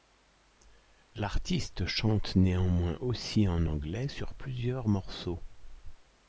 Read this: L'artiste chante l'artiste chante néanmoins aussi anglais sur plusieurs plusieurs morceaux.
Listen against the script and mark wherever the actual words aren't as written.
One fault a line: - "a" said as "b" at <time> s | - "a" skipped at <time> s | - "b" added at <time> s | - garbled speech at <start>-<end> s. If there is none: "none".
- "l'artiste chante" skipped at 2.4 s
- "en" added at 3.5 s
- "plusieurs" skipped at 4.9 s